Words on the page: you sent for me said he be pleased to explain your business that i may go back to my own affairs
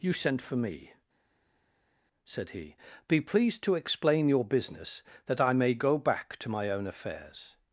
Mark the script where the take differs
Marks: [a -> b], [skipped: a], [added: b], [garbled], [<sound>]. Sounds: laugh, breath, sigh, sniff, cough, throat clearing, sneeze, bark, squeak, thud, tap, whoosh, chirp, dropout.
you sent for me said he be pleased to explain your business that i may go back to my own affairs